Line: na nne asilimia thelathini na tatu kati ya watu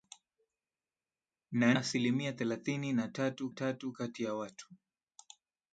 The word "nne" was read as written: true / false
false